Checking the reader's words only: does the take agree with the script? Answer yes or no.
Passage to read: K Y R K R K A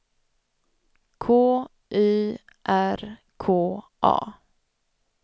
no